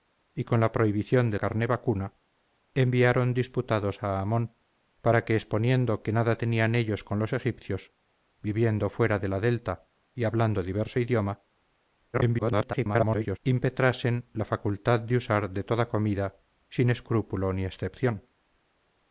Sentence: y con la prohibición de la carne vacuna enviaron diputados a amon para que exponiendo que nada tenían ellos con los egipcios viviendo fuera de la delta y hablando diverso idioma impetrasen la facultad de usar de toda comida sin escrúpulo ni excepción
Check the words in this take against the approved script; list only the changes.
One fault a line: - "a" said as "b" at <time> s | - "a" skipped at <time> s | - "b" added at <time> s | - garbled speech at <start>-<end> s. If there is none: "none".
- "la" skipped at 1.4 s
- garbled speech at 12.1-13.4 s